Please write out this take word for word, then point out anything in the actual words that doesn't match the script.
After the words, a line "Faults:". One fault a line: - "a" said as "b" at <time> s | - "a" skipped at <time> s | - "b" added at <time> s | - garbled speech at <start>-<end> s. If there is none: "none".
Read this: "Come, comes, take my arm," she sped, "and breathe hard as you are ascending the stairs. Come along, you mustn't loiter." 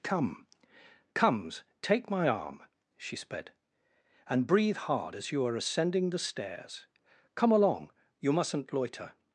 "Come, comes, take my arm," she sped, "and breathe hard as you are ascending the stairs. Come along, you mustn't loiter."
Faults:
none